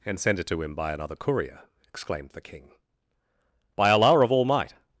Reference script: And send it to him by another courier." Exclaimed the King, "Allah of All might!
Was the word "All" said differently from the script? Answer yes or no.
no